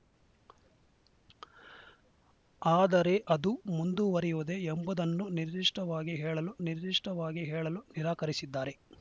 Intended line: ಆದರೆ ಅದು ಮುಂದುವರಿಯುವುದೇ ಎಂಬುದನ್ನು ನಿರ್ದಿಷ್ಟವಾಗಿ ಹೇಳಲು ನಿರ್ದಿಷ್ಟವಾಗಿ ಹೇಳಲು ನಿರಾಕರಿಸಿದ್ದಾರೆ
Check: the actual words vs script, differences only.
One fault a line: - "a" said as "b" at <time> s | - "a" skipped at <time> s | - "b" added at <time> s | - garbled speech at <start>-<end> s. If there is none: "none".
none